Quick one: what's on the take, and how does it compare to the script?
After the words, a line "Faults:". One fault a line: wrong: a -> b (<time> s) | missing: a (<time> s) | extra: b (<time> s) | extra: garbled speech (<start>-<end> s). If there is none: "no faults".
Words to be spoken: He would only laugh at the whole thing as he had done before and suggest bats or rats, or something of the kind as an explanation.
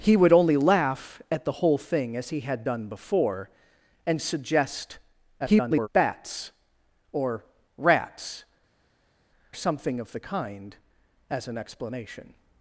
He would only laugh at the whole thing as he had done before and suggest [garbled] bats or rats, something of the kind as an explanation.
Faults:
extra: garbled speech (5.4-5.9 s)
missing: or (8.4 s)